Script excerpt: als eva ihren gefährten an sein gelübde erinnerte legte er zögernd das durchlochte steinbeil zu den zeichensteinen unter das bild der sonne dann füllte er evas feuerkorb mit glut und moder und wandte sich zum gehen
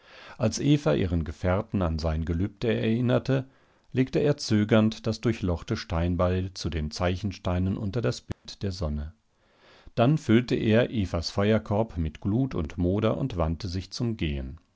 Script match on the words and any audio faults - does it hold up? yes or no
no